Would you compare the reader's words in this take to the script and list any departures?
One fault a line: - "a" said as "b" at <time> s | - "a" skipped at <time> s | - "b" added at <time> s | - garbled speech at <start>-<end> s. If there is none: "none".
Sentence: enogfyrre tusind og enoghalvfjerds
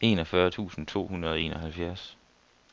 - "to hundrede" added at 0.9 s